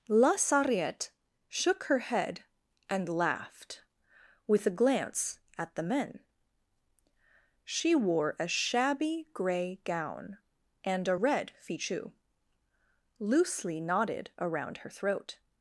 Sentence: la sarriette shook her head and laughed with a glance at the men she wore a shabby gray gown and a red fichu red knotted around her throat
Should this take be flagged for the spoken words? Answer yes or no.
yes